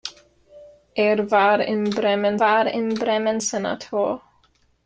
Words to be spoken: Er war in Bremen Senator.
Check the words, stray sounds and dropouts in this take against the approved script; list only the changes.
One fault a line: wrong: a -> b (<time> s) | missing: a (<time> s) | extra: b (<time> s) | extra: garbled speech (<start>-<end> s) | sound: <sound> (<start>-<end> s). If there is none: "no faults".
extra: war in Bremen (2.4 s)